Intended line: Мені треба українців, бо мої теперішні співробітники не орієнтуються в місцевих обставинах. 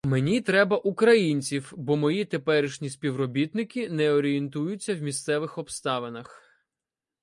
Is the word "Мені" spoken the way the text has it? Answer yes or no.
yes